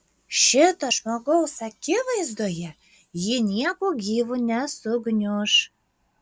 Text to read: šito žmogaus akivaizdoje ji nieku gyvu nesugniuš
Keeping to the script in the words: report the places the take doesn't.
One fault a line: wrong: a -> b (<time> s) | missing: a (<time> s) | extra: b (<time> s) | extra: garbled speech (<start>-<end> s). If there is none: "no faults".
no faults